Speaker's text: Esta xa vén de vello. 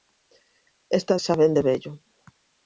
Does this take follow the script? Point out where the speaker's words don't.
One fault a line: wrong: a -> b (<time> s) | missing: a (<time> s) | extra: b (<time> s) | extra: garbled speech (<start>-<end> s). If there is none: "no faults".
no faults